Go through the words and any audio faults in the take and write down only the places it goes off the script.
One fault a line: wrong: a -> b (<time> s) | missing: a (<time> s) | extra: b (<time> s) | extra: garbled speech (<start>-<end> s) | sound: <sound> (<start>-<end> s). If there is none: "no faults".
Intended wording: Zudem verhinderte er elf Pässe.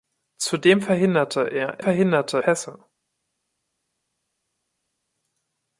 wrong: elf -> verhinderte (1.8 s)